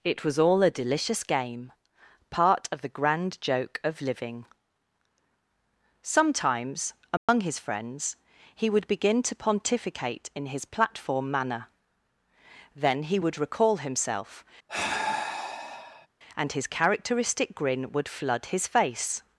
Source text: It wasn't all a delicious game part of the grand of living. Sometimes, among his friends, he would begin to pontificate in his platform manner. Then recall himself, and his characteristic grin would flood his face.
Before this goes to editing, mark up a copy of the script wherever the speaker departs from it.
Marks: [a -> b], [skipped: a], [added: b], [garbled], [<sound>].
It [wasn't -> was] all a delicious game part of the grand [added: joke] of living. Sometimes, among [dropout] his friends, he would begin to pontificate in his platform manner. Then [added: he would] recall himself, [sigh] and his characteristic grin would flood his face.